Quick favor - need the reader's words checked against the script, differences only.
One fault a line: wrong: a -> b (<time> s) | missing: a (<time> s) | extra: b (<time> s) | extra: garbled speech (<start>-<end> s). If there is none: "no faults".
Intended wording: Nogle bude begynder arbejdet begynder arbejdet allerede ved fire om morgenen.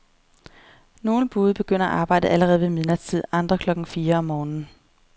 wrong: begynder arbejdet allerede ved -> allerede ved midnatstid andre klokken (2.3 s)